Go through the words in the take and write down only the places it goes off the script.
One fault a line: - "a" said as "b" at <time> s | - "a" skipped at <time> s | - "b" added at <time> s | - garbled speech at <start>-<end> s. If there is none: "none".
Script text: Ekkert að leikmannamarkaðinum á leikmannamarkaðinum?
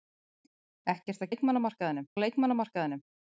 none